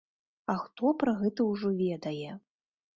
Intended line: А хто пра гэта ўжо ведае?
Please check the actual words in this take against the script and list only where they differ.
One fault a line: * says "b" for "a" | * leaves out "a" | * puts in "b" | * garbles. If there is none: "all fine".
all fine